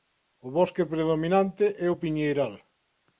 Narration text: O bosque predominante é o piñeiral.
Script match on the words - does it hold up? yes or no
yes